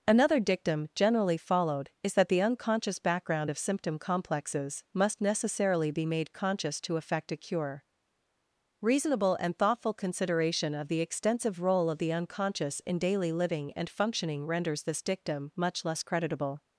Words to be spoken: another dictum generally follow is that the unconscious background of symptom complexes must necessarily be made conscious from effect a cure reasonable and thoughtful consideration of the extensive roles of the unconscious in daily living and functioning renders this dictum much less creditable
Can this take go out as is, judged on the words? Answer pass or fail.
fail